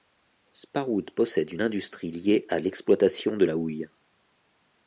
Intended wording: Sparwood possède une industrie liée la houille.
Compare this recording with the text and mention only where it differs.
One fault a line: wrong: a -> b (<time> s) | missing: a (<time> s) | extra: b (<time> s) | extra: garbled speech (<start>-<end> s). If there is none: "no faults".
extra: à l'exploitation de (2.5 s)